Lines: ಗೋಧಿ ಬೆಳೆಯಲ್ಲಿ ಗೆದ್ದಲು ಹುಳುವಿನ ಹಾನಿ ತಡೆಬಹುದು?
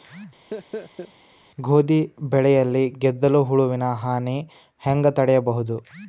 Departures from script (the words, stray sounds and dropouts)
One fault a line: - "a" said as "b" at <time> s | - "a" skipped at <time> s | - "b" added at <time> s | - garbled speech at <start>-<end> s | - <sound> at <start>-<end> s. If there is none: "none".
- laugh at 0.5-1.1 s
- "ಹೆಂಗ" added at 4.8 s